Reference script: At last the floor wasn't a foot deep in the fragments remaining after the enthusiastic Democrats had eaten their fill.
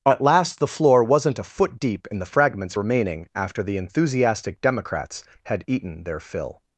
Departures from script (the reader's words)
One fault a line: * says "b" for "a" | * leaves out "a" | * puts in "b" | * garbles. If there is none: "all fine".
all fine